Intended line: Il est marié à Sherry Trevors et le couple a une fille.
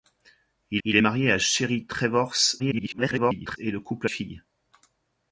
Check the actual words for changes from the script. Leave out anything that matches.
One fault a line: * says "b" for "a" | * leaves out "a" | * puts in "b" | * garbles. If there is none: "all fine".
* puts in "il"
* garbles
* leaves out "une"